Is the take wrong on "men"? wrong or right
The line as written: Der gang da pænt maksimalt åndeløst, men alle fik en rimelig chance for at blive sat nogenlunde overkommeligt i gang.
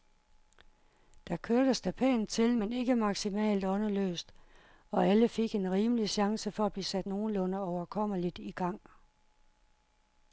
wrong